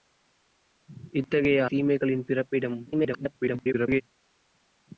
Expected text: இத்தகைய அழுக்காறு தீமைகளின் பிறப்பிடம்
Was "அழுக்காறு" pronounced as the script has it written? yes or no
no